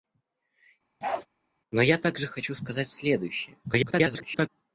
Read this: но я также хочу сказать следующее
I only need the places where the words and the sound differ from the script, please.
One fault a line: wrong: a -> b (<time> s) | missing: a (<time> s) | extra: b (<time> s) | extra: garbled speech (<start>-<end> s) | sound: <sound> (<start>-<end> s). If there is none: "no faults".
sound: bark (1.0-1.3 s)
extra: garbled speech (3.6-4.5 s)